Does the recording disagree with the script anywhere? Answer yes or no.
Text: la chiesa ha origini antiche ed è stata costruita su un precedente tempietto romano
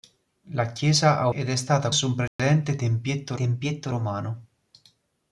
yes